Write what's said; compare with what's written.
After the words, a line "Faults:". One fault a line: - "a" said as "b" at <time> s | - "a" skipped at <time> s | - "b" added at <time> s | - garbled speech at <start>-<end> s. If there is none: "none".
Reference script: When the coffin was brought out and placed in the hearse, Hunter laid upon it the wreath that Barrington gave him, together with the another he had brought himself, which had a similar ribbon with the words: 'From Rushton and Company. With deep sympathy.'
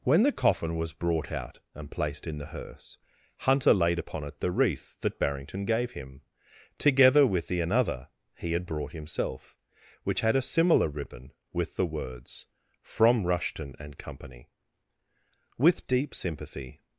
When the coffin was brought out and placed in the hearse, Hunter laid upon it the wreath that Barrington gave him, together with the another he had brought himself, which had a similar ribbon with the words: 'From Rushton and Company. With deep sympathy.'
Faults:
none